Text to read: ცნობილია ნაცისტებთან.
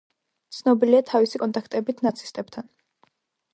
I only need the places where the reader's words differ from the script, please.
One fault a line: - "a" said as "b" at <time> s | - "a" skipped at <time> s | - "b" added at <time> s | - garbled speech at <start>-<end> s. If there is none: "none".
- "თავისი კონტაქტებით" added at 1.1 s